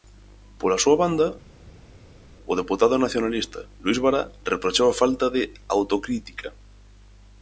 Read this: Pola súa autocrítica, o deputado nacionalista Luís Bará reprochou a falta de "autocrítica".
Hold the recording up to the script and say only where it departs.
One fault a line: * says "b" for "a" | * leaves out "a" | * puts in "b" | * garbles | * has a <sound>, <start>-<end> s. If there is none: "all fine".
* says "banda" for "autocrítica"